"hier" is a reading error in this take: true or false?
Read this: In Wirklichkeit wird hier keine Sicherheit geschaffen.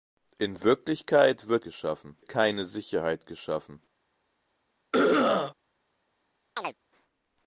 true